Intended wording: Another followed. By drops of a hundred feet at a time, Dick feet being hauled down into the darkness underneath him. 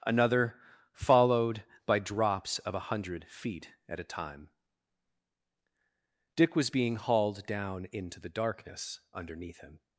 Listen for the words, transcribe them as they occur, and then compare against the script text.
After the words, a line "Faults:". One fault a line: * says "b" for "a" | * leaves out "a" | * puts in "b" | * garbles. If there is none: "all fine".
Another followed. By drops of a hundred feet at a time, Dick was being hauled down into the darkness underneath him.
Faults:
* says "was" for "feet"